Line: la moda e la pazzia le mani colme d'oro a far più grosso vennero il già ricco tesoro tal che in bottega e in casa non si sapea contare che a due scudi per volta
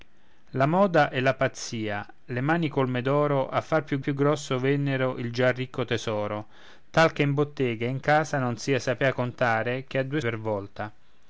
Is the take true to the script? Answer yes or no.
no